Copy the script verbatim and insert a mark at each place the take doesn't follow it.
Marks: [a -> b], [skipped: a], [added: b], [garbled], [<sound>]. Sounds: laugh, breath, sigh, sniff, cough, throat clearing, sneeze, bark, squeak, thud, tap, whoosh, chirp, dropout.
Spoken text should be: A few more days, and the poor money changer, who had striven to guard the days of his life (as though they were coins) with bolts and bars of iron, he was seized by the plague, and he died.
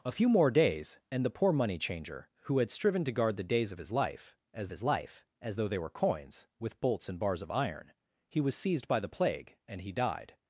A few more days, and the poor money changer, who had striven to guard the days of his life (as [added: his life as] though they were coins) with bolts and bars of iron, he was seized by the plague, and he died.